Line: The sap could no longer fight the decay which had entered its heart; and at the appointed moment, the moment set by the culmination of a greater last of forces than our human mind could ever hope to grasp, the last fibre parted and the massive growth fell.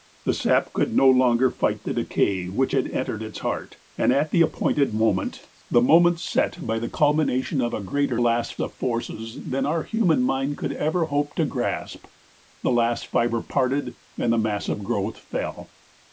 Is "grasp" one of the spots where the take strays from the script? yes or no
no